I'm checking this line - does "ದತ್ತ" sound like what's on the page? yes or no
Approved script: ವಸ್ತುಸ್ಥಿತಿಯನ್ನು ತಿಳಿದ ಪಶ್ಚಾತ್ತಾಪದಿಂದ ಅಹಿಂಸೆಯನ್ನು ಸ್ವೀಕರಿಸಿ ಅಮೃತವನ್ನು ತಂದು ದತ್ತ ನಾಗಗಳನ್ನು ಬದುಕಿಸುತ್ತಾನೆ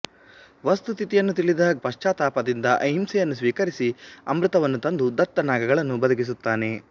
yes